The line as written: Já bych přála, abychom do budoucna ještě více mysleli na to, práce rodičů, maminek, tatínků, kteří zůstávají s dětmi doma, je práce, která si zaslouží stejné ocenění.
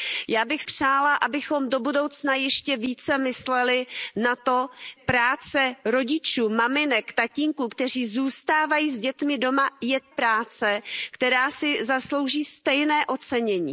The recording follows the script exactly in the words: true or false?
true